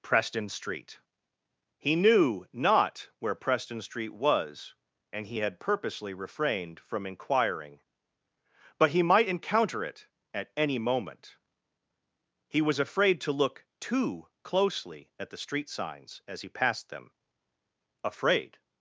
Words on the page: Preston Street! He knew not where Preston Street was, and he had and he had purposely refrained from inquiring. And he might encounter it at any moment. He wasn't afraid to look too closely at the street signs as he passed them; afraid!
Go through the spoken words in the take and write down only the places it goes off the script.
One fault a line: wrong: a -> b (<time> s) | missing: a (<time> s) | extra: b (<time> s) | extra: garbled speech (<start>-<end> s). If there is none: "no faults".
missing: and he had (5.6 s)
wrong: And -> But (8.8 s)
wrong: wasn't -> was (12.6 s)